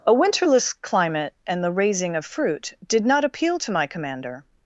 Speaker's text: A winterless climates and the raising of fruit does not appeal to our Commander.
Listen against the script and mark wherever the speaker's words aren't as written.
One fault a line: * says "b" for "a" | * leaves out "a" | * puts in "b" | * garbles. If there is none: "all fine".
* says "climate" for "climates"
* says "did" for "does"
* says "my" for "our"